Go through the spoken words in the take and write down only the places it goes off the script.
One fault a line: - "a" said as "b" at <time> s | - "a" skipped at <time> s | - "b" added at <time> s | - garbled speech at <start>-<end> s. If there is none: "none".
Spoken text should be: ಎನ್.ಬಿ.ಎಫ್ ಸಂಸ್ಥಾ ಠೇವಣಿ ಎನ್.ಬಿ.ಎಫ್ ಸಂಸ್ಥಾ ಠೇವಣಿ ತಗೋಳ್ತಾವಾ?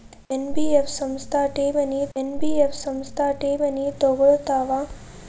none